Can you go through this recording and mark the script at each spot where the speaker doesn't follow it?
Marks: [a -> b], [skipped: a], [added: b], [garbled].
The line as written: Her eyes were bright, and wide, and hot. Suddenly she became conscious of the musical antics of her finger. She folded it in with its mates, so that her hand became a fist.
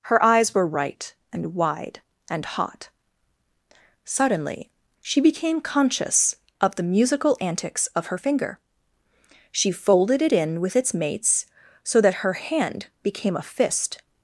Her eyes were [bright, -> right] and wide, and hot. Suddenly she became conscious of the musical antics of her finger. She folded it in with its mates, so that her hand became a fist.